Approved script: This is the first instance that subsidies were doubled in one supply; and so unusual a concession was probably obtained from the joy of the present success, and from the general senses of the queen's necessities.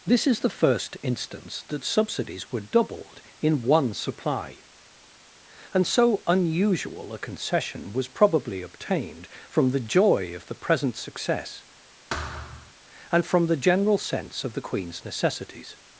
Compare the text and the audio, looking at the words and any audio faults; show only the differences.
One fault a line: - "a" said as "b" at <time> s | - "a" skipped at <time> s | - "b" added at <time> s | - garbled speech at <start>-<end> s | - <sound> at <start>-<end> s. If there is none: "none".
- thud at 12.1-12.7 s
- "senses" said as "sense" at 14.0 s